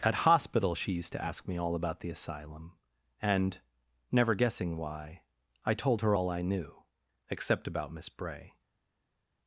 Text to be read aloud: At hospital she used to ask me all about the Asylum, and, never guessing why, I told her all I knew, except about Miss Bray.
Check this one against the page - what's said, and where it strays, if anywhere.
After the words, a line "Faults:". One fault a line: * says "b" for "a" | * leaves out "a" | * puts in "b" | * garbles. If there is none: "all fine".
At hospital she used to ask me all about the Asylum, and, never guessing why, I told her all I knew, except about Miss Bray.
Faults:
all fine